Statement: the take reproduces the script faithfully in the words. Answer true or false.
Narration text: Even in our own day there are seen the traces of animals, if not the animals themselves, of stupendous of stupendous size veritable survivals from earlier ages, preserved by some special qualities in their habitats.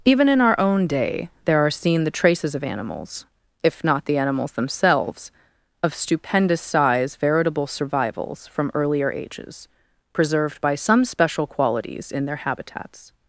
false